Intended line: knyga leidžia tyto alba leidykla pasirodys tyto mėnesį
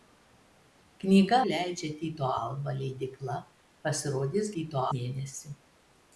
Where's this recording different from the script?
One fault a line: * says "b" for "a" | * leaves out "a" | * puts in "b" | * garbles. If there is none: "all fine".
all fine